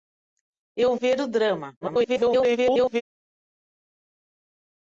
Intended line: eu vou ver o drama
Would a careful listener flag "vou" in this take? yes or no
yes